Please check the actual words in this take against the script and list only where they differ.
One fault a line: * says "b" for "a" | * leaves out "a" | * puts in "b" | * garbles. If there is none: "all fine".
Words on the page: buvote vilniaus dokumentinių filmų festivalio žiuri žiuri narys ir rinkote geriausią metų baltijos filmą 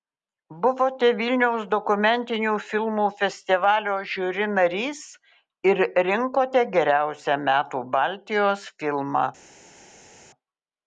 * leaves out "žiuri"